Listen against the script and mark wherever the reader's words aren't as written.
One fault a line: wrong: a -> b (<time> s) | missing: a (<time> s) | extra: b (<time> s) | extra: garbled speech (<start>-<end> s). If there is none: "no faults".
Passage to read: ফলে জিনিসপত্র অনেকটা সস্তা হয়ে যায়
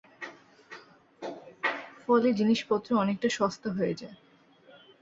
no faults